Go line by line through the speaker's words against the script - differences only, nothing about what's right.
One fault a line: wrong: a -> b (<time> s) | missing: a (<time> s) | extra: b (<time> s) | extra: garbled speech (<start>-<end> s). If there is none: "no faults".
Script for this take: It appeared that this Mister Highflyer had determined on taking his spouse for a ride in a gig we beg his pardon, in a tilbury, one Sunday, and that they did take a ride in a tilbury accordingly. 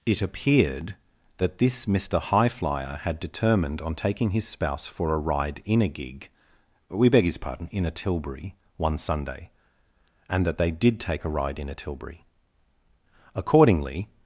no faults